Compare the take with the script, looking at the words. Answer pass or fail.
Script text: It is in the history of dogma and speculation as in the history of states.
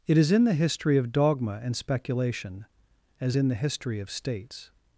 pass